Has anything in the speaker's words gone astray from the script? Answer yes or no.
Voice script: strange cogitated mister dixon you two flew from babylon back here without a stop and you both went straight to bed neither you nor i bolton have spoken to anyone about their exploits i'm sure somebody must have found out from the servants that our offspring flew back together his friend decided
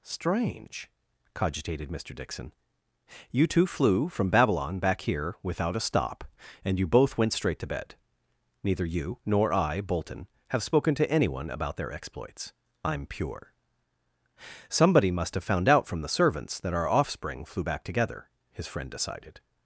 yes